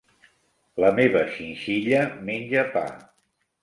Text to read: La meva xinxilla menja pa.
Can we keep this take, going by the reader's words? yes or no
yes